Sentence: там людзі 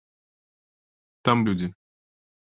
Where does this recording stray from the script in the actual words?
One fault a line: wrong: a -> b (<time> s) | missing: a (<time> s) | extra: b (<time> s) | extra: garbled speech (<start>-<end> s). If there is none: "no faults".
no faults